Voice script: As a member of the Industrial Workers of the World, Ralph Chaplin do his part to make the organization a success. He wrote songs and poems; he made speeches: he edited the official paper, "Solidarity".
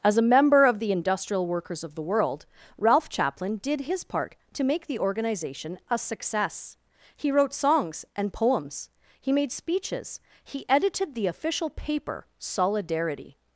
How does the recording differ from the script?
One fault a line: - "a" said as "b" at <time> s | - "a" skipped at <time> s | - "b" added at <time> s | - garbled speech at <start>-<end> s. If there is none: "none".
- "do" said as "did" at 3.6 s